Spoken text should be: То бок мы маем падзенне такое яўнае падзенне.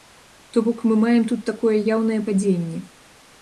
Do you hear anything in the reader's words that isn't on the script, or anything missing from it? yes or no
yes